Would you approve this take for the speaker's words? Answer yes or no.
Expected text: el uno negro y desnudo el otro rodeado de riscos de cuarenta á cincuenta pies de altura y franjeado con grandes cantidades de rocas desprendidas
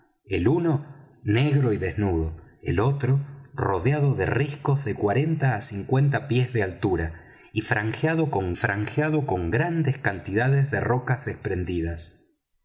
no